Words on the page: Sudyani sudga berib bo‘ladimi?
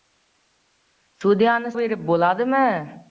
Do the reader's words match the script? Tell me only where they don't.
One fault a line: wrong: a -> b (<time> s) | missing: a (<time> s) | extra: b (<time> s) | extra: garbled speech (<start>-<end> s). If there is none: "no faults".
missing: sudga (1.7 s)